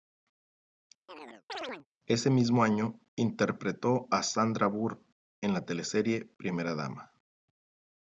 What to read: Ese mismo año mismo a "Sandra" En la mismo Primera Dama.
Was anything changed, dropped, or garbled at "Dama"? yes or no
no